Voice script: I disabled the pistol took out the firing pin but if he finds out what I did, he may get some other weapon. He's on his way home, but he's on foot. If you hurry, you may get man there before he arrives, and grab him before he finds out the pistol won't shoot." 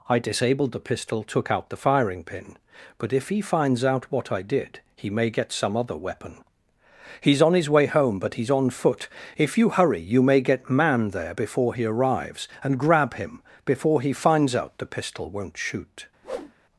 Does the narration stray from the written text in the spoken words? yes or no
no